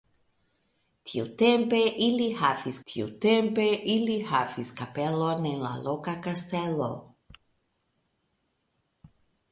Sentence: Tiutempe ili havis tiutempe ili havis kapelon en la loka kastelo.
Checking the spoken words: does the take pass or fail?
pass